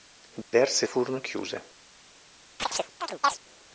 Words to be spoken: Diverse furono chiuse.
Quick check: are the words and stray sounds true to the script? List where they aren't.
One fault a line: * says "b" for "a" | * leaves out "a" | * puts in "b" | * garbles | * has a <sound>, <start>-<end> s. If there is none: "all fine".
* has a dropout, 0.4-0.5 s
* has a chirp, 2.6-3.4 s